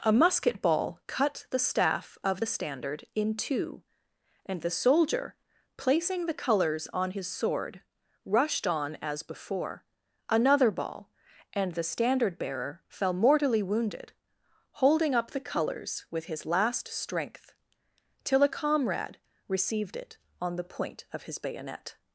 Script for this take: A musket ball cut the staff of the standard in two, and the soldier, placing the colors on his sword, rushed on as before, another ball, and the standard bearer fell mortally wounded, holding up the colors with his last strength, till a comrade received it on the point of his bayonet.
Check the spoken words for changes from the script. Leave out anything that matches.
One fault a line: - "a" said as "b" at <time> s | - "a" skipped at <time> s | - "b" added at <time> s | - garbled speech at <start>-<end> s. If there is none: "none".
none